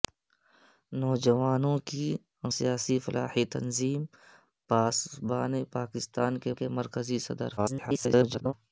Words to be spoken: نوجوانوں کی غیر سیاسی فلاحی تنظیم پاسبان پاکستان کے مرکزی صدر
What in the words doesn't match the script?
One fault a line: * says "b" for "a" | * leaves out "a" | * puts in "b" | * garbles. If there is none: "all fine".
* leaves out "غیر"
* puts in "کے"
* garbles